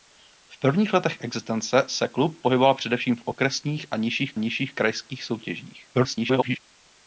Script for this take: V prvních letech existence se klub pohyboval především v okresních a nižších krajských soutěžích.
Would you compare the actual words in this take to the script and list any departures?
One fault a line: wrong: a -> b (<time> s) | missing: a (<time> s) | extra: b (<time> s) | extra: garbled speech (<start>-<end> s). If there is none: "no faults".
extra: nižších (4.4 s)
extra: garbled speech (5.9-6.6 s)